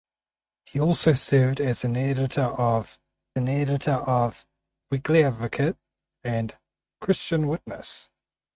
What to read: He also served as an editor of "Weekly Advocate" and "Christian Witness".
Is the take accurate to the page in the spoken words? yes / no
no